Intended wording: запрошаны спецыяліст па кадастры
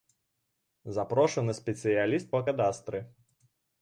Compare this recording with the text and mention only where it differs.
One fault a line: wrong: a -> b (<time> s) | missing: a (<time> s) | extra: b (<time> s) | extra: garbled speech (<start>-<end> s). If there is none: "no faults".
no faults